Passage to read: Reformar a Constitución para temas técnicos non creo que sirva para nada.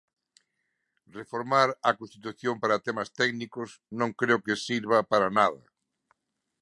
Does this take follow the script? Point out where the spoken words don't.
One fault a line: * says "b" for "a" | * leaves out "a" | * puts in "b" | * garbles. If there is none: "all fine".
all fine